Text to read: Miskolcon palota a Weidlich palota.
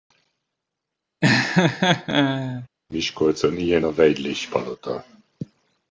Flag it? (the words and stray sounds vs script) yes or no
yes